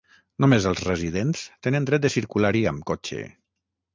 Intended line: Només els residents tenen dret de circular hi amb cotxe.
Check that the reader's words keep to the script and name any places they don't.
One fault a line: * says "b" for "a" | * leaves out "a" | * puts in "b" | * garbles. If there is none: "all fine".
all fine